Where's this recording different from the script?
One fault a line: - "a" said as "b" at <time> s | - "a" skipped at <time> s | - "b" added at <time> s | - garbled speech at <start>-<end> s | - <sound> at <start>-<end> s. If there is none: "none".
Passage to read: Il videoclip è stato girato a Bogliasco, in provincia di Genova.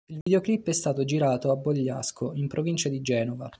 - dropout at 0.2-0.3 s